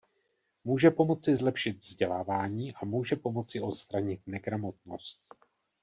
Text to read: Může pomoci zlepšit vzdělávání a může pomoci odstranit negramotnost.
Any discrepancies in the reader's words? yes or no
no